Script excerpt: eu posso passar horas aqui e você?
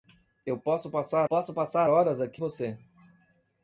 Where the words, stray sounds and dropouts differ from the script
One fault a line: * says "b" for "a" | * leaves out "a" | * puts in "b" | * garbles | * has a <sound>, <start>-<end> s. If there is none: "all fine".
* puts in "posso passar"
* leaves out "e"